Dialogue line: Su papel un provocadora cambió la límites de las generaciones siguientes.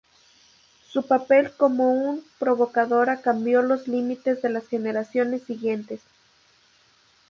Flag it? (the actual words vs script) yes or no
yes